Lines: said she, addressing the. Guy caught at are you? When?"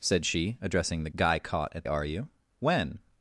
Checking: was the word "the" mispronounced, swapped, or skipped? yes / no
no